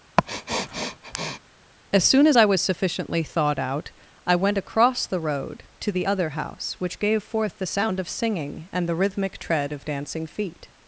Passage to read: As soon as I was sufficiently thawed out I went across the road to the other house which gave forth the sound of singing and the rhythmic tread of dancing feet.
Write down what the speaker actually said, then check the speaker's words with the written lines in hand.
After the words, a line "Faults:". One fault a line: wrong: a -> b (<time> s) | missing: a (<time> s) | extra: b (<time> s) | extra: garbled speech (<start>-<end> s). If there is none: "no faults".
As soon as I was sufficiently thawed out I went across the road to the other house which gave forth the sound of singing and the rhythmic tread of dancing feet.
Faults:
no faults